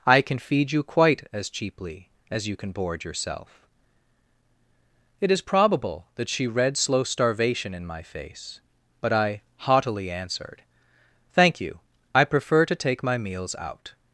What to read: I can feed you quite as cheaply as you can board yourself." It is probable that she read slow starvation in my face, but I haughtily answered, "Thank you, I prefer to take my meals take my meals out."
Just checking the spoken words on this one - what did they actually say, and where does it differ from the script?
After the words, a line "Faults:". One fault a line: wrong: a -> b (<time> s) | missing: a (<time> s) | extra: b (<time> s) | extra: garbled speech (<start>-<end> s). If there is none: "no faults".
I can feed you quite as cheaply as you can board yourself." It is probable that she read slow starvation in my face, but I haughtily answered, "Thank you, I prefer to take my meals out."
Faults:
missing: take my meals (13.5 s)